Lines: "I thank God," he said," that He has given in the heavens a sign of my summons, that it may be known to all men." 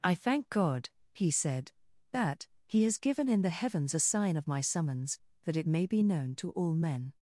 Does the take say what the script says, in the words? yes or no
yes